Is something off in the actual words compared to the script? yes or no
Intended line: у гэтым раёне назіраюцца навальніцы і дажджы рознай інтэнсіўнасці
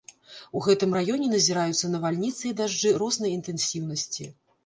no